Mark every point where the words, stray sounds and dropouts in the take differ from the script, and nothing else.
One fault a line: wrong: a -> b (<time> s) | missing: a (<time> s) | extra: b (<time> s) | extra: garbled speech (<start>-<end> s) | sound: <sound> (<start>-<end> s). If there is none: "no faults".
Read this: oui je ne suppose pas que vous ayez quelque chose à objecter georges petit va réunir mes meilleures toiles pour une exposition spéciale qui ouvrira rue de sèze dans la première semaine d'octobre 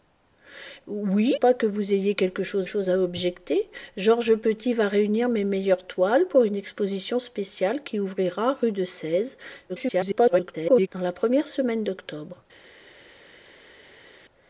missing: je ne suppose (1.4 s)
extra: chose (2.6 s)
extra: garbled speech (9.7-10.9 s)